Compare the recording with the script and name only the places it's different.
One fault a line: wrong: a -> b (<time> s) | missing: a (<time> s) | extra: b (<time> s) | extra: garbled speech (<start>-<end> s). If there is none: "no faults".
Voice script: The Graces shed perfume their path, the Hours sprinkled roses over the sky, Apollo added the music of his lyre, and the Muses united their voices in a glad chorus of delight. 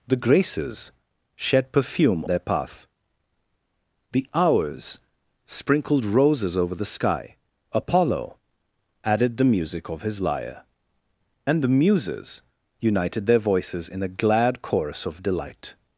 no faults